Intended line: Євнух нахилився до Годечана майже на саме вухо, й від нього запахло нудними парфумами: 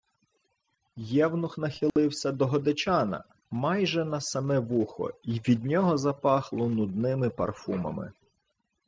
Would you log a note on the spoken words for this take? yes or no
no